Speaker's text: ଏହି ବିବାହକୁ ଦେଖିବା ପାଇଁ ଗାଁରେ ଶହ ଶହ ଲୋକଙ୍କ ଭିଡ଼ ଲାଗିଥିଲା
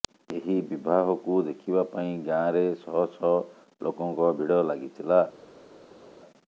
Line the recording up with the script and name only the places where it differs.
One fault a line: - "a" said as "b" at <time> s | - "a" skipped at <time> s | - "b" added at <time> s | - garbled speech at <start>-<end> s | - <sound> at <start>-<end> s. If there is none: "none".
none